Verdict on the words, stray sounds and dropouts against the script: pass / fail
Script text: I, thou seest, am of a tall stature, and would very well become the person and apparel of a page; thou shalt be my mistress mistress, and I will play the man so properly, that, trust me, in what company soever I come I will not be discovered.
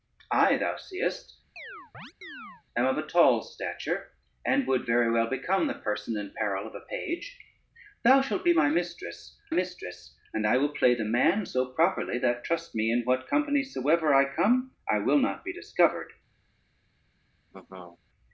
fail